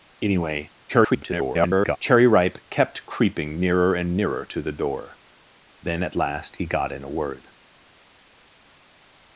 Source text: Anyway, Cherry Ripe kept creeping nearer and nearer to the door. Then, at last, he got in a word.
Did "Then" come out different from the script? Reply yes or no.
no